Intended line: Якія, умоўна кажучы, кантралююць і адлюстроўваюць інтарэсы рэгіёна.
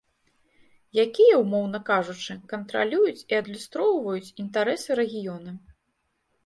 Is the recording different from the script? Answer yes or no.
no